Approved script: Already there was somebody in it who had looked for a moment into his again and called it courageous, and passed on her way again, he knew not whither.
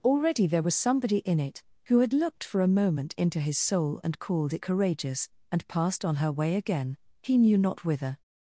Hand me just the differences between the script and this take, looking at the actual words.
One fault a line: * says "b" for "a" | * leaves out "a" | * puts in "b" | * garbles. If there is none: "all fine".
* says "soul" for "again"